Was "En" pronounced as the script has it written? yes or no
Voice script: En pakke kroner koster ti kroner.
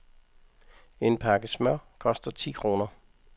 yes